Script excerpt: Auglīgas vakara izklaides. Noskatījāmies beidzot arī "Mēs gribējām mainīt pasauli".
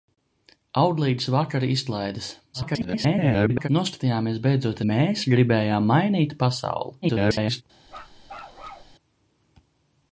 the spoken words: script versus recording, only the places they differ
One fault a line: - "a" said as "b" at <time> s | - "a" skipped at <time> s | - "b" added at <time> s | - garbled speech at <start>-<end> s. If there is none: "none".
- garbled speech at 2.5-3.7 s
- "arī" skipped at 4.8 s
- garbled speech at 7.0-7.6 s